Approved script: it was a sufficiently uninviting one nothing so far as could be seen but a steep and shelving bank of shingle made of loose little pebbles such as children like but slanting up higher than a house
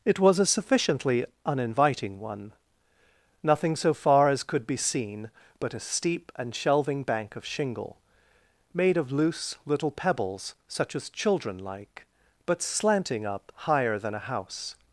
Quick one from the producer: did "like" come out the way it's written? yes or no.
yes